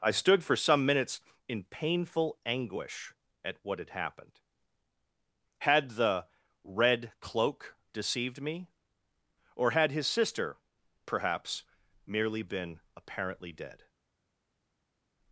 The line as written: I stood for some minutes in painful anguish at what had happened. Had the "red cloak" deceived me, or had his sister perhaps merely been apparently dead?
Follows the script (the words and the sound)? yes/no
yes